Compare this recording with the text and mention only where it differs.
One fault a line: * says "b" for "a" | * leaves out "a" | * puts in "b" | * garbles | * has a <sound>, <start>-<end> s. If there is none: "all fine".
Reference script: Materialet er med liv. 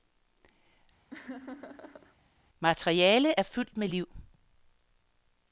* has a laugh, 1.1-2.2 s
* puts in "fyldt"